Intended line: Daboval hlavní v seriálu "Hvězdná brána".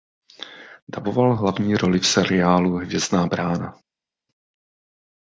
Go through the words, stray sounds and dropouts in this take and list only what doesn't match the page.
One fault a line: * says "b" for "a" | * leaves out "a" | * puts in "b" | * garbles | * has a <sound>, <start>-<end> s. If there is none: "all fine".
* puts in "roli"